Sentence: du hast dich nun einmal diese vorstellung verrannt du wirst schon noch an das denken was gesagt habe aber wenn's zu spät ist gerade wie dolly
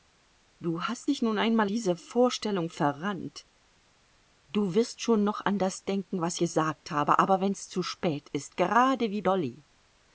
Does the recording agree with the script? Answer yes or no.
yes